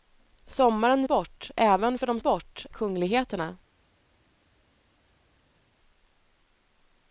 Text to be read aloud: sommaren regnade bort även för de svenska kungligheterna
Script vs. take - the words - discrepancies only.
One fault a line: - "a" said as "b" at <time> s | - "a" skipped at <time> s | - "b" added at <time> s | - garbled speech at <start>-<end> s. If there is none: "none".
- "regnade" skipped at 1.1 s
- "svenska" said as "bort" at 2.2 s